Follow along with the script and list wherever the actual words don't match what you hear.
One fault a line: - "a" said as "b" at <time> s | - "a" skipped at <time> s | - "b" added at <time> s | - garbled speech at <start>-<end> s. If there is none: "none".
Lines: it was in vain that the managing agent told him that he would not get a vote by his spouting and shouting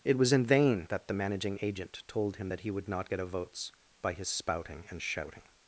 - "vote" said as "votes" at 3.3 s